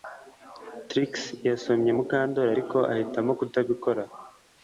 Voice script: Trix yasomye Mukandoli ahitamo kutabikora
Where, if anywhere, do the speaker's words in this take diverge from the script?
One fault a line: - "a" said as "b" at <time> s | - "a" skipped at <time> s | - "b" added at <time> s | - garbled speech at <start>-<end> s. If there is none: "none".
- "ariko" added at 2.5 s